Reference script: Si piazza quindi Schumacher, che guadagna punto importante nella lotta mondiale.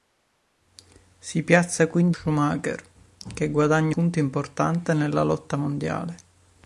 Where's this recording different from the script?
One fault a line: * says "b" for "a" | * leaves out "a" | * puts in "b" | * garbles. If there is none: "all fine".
all fine